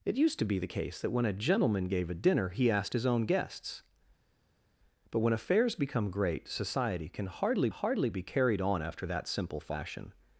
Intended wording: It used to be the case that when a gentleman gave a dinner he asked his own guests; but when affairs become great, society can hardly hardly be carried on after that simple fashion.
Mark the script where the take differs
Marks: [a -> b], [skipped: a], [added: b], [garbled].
It used to be the case that when a gentleman gave a dinner he asked his own guests; but when affairs become great, society can hardly hardly be carried on after that simple fashion.